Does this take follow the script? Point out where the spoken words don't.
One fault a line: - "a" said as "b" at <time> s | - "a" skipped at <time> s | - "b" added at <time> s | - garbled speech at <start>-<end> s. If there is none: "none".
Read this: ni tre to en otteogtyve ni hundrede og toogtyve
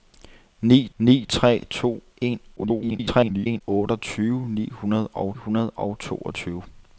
- "ni" added at 1.0 s
- garbled speech at 2.6-3.6 s
- "hundrede og" added at 5.3 s